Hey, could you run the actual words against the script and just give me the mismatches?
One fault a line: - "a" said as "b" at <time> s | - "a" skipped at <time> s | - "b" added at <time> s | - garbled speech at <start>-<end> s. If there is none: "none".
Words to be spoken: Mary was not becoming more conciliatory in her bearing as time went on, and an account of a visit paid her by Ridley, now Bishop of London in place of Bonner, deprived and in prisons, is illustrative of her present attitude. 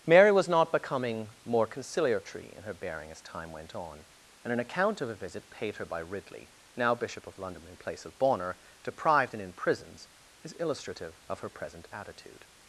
none